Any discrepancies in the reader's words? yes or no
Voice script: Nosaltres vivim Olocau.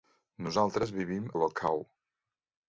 no